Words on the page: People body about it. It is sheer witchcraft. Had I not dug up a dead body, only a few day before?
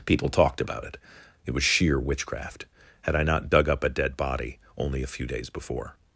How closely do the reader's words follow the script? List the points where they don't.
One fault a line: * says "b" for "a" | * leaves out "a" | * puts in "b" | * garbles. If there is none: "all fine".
* says "talked" for "body"
* says "was" for "is"
* says "days" for "day"